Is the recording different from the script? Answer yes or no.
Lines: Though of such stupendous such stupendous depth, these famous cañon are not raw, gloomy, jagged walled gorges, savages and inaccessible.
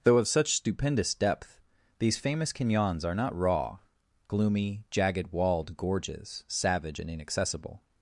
yes